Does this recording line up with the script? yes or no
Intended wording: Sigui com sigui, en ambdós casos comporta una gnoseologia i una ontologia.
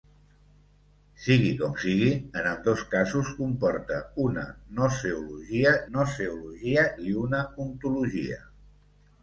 no